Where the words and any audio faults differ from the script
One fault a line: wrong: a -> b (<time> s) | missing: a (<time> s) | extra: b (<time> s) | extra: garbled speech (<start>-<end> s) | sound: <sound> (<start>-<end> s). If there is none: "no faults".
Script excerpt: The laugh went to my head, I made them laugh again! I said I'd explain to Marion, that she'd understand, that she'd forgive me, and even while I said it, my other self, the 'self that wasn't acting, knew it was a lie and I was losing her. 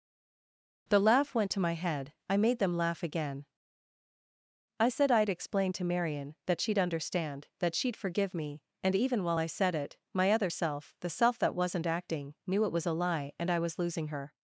no faults